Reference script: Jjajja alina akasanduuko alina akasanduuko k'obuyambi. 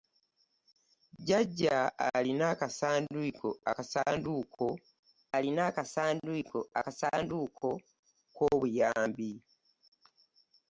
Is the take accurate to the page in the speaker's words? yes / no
yes